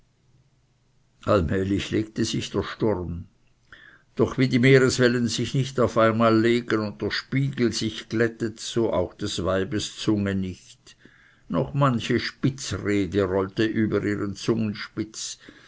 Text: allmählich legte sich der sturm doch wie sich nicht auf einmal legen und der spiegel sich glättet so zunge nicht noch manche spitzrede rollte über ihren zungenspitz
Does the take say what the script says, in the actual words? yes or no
no